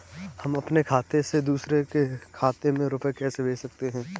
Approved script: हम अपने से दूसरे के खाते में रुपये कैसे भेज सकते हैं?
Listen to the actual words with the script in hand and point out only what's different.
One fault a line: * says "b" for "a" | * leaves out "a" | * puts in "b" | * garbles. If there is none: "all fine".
* puts in "खाते"